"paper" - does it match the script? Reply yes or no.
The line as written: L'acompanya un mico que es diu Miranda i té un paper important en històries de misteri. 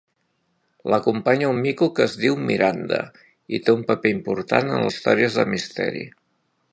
yes